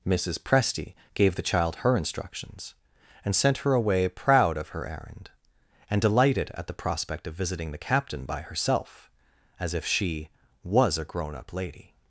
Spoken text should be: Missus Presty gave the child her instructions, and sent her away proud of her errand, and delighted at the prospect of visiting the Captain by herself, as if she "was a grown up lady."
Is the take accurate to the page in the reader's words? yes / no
yes